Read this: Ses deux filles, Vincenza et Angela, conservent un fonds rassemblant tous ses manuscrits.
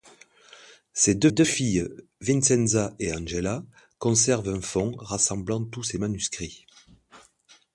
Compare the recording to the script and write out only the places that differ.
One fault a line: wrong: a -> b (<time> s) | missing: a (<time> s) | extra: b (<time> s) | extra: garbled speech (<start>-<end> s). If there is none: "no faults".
extra: deux (1.3 s)